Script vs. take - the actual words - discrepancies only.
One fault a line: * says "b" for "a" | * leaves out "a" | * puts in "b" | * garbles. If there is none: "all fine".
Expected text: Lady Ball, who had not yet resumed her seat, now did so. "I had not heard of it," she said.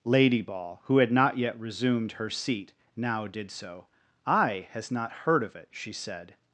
* says "has" for "had"